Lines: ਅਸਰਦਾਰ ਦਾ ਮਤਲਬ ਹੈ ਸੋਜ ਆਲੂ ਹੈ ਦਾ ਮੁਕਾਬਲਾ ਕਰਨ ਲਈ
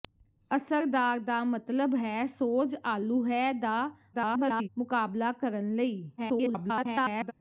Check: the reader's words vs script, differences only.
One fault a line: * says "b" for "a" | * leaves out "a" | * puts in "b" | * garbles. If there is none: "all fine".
* garbles
* garbles